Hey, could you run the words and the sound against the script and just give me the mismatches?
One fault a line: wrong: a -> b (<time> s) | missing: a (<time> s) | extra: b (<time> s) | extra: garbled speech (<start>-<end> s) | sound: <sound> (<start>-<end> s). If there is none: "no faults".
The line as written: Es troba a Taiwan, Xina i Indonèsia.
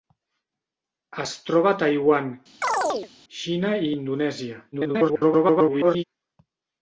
sound: chirp (2.6-3.1 s)
extra: garbled speech (4.7-6.0 s)